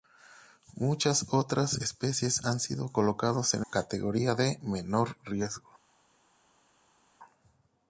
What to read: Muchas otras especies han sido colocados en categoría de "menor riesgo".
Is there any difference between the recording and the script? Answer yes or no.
no